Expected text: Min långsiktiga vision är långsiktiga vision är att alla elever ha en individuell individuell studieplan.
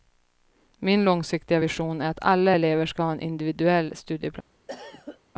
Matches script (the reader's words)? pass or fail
fail